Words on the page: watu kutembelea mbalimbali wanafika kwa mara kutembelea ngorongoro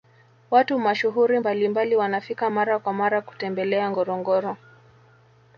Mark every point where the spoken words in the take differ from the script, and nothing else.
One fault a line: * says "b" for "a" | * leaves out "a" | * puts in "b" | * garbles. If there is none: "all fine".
* says "mashuhuri" for "kutembelea"
* puts in "mara"